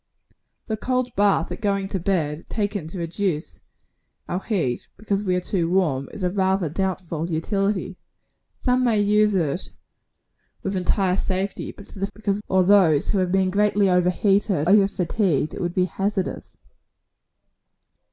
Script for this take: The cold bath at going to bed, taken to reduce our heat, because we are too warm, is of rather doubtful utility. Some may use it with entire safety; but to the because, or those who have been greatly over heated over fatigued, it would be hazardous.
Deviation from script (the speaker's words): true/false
false